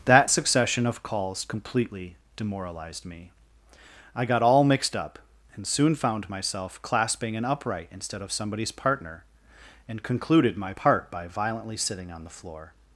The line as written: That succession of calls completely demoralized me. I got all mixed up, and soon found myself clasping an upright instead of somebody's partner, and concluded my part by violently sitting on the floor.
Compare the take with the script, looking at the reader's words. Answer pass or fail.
pass